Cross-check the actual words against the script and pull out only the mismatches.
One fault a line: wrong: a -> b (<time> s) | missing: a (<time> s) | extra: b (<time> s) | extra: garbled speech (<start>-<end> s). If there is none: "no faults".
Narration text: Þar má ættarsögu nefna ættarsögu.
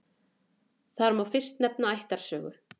wrong: ættarsögu -> fyrst (1.3 s)